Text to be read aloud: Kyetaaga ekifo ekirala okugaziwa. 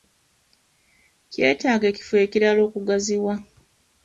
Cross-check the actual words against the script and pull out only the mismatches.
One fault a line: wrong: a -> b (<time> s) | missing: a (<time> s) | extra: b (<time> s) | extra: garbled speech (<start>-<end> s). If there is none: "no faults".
no faults